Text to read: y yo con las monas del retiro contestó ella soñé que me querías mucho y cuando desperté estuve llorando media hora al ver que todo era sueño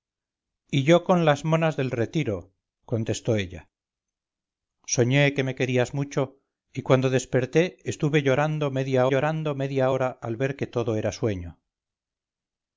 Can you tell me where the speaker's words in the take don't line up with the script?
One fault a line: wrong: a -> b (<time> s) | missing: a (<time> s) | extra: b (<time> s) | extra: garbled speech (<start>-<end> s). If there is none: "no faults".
extra: llorando media (9.1 s)